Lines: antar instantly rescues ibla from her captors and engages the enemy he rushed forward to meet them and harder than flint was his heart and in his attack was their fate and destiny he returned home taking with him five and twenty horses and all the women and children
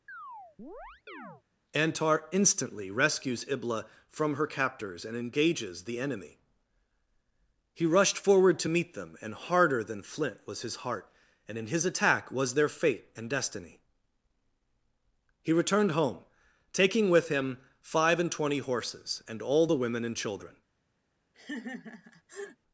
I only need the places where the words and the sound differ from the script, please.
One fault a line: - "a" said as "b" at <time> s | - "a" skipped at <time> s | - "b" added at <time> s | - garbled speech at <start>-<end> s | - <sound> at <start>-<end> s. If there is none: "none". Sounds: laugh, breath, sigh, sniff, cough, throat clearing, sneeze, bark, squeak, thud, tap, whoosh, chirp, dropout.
- chirp at 0.1-1.4 s
- laugh at 21.3-22.6 s